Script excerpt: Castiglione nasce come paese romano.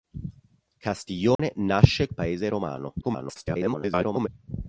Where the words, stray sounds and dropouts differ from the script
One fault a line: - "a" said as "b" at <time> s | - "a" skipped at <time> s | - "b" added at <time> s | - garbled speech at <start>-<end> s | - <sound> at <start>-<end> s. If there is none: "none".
- dropout at 1.4-1.4 s
- "come" skipped at 2.1 s
- garbled speech at 3.0-4.3 s